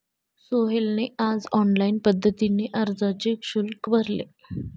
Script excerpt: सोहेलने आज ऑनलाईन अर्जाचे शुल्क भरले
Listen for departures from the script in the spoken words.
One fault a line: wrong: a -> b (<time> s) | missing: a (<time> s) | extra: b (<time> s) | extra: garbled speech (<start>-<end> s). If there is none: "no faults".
extra: पद्धतीने (2.0 s)